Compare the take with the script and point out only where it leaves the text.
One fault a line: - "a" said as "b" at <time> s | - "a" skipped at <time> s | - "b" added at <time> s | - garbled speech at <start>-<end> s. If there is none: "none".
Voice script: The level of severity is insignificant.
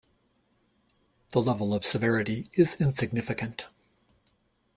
none